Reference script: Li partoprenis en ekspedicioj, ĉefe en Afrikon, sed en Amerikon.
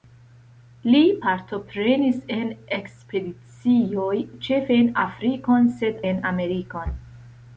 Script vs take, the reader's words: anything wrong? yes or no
no